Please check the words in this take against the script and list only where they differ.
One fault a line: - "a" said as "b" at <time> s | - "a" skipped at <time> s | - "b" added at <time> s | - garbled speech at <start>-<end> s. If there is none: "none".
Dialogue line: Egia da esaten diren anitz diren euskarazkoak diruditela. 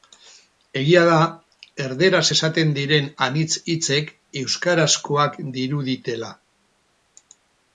- "erdaraz" added at 1.9 s
- "diren" said as "hitzek" at 3.7 s